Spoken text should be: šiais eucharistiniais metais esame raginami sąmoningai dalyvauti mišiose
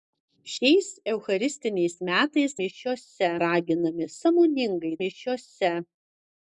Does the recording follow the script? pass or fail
fail